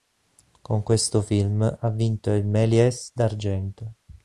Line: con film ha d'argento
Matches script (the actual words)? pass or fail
fail